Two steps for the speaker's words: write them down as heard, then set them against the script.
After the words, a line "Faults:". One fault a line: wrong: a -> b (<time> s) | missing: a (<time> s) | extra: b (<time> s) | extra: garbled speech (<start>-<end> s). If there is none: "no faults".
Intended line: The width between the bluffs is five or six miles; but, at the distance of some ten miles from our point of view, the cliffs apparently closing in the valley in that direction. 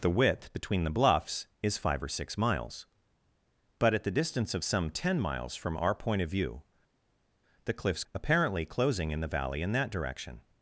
The width between the bluffs is five or six miles; but, at the distance of some ten miles from our point of view, the cliffs apparently closing in the valley in that direction.
Faults:
no faults